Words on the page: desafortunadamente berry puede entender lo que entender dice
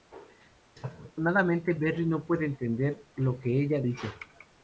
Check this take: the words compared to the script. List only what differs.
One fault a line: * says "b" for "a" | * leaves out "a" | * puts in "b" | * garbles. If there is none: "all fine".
* puts in "no"
* says "ella" for "entender"